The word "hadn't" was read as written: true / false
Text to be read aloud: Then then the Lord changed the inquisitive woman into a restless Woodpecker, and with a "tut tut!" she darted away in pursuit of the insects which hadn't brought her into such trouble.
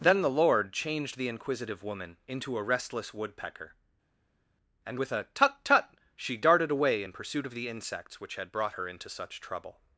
false